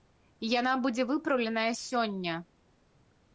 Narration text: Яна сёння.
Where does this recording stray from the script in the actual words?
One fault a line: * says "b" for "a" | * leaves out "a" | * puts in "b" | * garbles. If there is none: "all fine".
* puts in "будзе выпраўленая"